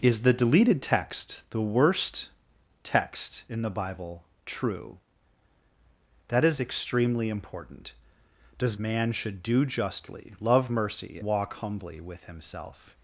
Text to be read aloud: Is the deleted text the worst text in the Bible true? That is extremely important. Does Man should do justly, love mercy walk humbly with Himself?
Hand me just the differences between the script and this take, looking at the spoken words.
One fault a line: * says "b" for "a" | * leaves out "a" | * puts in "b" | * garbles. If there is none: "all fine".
all fine